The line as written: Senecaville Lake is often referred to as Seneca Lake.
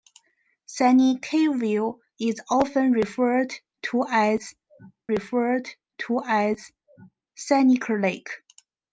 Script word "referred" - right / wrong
right